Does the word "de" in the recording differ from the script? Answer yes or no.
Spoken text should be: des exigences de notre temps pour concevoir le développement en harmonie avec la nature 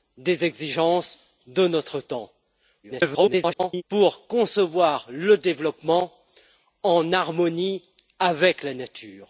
no